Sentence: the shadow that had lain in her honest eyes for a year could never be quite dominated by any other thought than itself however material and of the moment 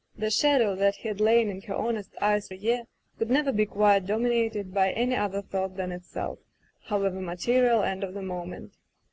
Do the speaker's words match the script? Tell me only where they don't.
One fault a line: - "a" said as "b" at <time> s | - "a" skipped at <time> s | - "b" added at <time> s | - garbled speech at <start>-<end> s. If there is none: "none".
- "for" skipped at 2.5 s